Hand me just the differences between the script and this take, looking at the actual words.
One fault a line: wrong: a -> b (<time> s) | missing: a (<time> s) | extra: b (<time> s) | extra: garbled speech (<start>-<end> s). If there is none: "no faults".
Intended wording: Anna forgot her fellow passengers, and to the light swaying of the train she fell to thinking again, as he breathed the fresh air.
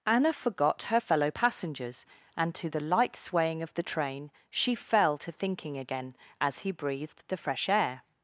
no faults